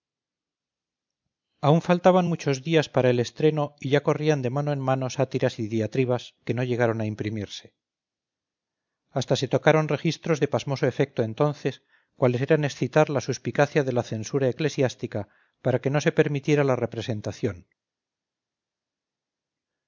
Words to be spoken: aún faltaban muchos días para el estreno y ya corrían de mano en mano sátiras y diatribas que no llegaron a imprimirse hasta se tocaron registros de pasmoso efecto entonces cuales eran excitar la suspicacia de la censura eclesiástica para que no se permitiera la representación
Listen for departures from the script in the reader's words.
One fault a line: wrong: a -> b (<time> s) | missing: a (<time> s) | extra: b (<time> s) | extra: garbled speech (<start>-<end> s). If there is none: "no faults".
no faults